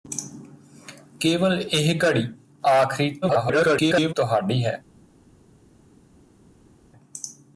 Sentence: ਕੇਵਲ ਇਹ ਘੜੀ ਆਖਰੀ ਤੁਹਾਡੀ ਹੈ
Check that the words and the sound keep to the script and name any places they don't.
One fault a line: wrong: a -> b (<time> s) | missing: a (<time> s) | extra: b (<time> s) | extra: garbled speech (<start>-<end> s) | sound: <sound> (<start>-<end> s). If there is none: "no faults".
extra: garbled speech (3.2-4.1 s)